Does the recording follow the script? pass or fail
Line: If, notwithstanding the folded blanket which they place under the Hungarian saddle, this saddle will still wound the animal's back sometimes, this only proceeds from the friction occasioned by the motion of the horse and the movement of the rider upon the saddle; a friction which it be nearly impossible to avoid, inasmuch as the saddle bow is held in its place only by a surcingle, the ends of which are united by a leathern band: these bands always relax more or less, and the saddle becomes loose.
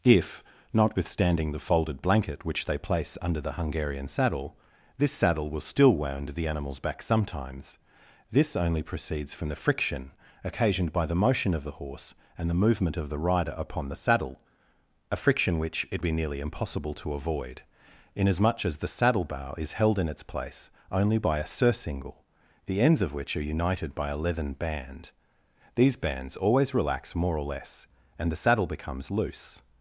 pass